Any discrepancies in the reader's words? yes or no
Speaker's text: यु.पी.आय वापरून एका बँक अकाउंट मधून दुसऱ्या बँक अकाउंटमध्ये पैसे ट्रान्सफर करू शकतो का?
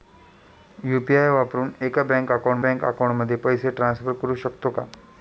yes